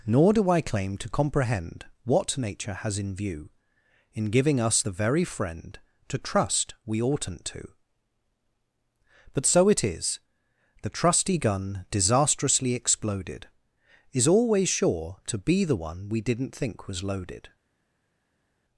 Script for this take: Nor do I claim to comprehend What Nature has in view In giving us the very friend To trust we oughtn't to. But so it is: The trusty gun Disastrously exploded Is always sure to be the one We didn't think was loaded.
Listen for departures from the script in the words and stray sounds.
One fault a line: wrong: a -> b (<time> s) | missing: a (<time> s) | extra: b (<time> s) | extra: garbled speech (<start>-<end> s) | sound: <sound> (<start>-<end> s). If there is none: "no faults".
no faults